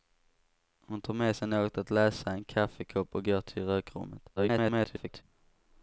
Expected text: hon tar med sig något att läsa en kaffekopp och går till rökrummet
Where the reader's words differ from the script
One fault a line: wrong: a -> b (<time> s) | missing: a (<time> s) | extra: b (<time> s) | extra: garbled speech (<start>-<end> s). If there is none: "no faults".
extra: garbled speech (4.4-5.2 s)